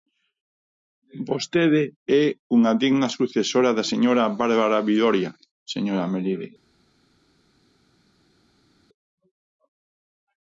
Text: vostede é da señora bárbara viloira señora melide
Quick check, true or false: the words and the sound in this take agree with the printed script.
false